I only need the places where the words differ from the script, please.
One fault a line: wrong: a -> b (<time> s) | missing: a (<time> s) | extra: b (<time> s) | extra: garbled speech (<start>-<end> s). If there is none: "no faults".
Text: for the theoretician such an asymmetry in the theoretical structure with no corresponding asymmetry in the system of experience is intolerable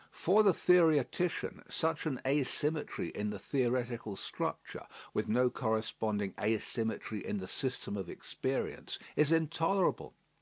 no faults